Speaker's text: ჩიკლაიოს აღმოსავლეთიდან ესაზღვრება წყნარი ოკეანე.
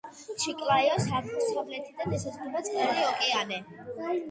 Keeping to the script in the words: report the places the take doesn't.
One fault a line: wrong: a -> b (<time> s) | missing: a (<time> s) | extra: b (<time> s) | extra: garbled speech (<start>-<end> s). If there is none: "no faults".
no faults